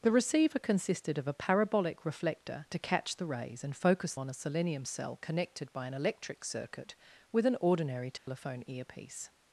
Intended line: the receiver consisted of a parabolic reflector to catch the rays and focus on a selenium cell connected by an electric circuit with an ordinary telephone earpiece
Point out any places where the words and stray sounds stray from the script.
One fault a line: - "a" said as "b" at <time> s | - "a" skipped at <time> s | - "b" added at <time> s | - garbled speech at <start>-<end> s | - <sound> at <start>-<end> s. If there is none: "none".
- dropout at 8.2-8.3 s